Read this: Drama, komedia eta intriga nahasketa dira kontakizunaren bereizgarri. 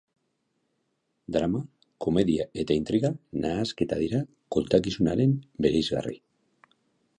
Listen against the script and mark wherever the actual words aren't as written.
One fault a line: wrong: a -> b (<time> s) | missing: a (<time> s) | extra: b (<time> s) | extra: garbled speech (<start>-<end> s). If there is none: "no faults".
no faults